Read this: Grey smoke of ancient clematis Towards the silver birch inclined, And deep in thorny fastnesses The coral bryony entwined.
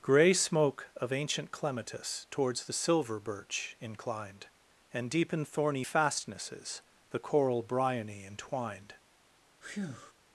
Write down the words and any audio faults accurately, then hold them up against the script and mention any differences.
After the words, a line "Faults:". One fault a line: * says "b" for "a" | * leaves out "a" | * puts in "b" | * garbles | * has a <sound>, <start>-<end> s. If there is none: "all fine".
Grey smoke of ancient clematis Towards the silver birch inclined, And deep in thorny fastnesses The coral bryony entwined.
Faults:
* has a breath, 9.6-10.1 s